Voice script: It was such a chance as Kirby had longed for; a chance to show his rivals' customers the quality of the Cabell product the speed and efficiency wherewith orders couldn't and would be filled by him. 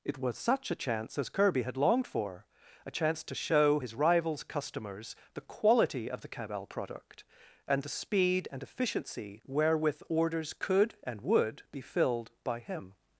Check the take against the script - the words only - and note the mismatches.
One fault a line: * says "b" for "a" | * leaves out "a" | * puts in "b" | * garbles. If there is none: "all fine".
* puts in "and"
* says "could" for "couldn't"